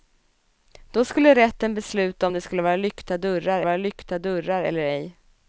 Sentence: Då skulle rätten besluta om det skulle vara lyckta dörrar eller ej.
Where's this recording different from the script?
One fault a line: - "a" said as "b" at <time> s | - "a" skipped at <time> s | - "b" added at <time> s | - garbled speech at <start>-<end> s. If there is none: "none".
- "vara lyckta dörrar" added at 3.6 s